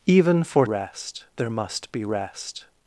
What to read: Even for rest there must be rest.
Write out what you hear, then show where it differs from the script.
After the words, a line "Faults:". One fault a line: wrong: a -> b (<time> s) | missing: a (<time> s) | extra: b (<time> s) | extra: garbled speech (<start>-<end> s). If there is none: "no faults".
Even for rest there must be rest.
Faults:
no faults